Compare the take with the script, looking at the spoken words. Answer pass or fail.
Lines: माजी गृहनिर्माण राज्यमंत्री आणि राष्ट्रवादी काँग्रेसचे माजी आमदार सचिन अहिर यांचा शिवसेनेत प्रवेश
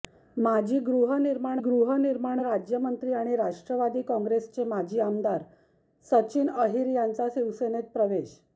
fail